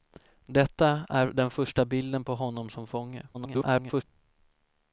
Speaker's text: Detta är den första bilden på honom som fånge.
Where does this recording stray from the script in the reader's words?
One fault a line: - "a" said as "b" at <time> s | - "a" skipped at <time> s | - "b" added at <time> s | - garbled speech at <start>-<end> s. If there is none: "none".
- garbled speech at 3.3-4.0 s